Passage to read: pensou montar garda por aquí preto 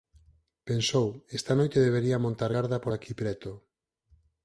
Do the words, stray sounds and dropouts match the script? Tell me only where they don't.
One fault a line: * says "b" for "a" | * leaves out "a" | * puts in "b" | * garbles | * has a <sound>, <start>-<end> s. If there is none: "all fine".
* puts in "esta noite debería"